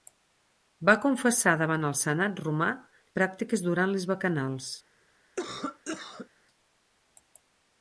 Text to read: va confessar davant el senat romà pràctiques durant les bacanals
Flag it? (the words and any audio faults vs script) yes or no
yes